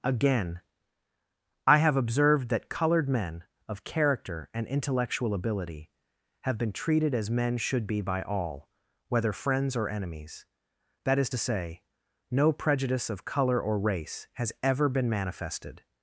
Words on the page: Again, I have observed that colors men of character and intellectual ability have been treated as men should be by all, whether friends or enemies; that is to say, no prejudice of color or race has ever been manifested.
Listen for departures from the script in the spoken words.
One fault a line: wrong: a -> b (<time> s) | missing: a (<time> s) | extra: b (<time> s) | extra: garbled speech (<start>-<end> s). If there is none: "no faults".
wrong: colors -> colored (2.7 s)